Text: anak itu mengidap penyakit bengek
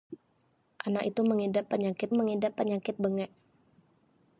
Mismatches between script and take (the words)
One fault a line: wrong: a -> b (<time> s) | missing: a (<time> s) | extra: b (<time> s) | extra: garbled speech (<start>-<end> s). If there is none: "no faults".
extra: mengidap penyakit (2.1 s)